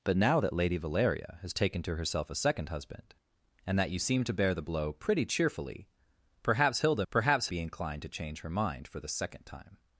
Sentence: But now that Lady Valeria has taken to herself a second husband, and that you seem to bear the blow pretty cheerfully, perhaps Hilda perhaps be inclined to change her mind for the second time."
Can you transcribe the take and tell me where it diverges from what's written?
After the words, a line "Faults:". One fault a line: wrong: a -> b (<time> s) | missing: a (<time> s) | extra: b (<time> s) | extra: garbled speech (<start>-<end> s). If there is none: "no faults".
But now that Lady Valeria has taken to herself a second husband, and that you seem to bear the blow pretty cheerfully, perhaps Hilda perhaps be inclined to change her mind for the second time."
Faults:
no faults